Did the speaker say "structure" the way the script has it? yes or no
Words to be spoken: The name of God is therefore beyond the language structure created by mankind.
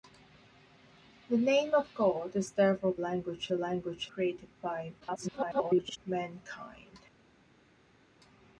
no